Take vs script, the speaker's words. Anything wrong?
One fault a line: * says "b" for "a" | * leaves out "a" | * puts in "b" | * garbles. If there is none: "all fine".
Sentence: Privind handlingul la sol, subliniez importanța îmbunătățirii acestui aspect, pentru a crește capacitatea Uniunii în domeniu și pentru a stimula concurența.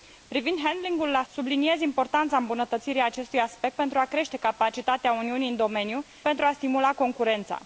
* leaves out "sol"
* leaves out "și"